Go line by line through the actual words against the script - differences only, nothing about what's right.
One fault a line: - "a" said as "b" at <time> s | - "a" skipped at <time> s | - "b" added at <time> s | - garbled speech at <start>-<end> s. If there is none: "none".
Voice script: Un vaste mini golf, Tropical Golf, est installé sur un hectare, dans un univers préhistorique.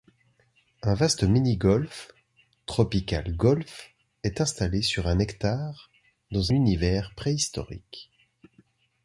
- "un" skipped at 6.5 s